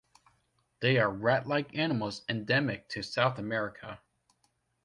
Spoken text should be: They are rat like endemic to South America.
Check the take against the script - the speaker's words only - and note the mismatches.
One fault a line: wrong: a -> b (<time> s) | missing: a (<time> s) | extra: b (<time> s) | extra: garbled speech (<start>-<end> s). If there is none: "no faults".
extra: animals (1.8 s)